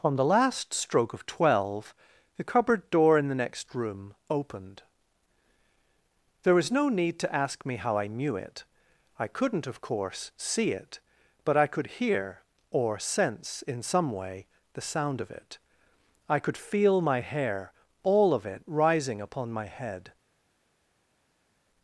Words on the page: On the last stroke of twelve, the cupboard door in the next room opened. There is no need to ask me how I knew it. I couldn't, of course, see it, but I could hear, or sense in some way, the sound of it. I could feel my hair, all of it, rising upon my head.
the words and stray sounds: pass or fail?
fail